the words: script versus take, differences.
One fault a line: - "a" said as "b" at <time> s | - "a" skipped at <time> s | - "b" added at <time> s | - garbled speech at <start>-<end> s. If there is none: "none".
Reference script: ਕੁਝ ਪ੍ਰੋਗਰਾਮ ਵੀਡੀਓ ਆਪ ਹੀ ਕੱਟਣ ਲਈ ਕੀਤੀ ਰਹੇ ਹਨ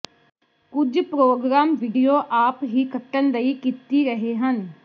none